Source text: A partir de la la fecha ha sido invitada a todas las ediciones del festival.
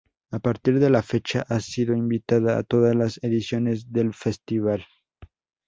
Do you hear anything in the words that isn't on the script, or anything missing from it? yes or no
yes